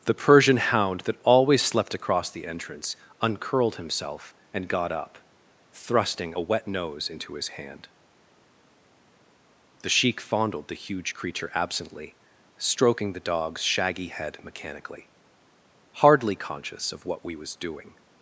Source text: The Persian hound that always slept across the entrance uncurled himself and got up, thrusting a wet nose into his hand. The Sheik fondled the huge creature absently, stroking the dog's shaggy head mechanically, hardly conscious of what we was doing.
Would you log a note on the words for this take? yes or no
no